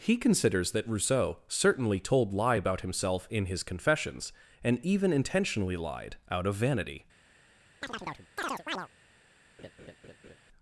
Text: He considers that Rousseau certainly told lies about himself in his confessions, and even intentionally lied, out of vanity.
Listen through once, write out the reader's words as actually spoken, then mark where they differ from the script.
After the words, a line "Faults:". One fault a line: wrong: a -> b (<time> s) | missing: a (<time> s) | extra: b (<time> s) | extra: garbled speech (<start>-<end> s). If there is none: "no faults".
He considers that Rousseau certainly told lie about himself in his confessions, and even intentionally lied, out of vanity.
Faults:
wrong: lies -> lie (2.3 s)